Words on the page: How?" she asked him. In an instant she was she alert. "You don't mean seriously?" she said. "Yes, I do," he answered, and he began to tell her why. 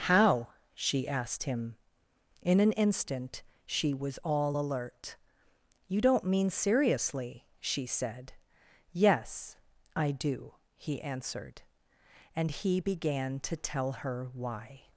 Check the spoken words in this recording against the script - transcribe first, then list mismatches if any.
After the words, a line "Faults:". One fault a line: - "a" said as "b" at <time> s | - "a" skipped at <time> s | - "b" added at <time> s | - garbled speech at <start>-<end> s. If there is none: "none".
How?" she asked him. In an instant she was all alert. "You don't mean seriously?" she said. "Yes, I do," he answered, and he began to tell her why.
Faults:
- "she" said as "all" at 4.2 s